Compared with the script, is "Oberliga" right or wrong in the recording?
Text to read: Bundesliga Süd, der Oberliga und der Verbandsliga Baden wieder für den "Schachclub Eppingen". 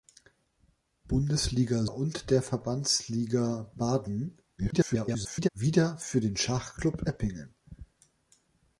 wrong